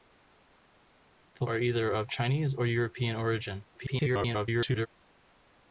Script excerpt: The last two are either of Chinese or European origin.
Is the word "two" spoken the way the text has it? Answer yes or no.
no